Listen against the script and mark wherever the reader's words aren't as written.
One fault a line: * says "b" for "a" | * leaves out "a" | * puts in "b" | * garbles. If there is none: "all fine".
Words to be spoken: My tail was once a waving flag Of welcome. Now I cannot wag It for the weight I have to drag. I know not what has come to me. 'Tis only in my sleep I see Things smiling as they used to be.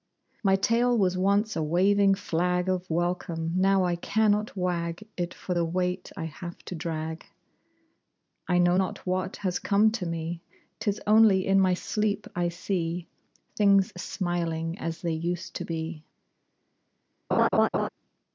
all fine